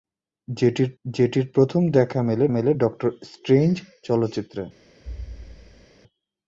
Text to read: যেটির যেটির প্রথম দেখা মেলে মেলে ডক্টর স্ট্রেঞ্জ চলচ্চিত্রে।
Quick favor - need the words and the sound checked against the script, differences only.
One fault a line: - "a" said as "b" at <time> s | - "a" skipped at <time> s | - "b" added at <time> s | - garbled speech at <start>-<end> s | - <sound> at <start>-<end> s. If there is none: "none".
- thud at 5.0-5.9 s